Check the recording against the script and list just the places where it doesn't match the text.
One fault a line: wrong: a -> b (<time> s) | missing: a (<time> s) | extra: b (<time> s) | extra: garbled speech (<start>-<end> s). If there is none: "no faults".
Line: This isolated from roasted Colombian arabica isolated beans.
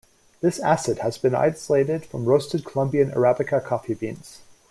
extra: acid has been (0.6 s)
wrong: isolated -> coffee (3.6 s)